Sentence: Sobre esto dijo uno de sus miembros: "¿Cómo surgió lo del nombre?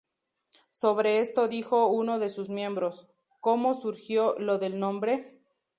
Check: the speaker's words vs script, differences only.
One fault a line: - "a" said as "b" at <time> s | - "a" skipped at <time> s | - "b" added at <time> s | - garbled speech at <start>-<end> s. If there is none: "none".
none